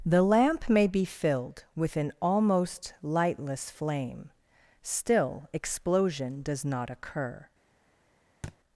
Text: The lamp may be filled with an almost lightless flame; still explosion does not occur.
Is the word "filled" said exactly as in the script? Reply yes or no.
yes